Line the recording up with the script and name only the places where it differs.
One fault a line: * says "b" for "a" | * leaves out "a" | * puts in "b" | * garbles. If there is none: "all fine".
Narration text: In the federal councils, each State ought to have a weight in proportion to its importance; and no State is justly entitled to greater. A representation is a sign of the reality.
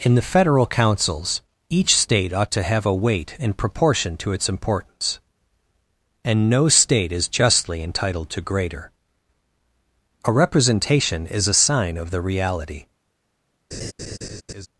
all fine